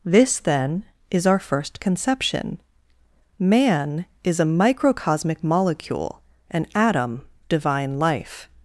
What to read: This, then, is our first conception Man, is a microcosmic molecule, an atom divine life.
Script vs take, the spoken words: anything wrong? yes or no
no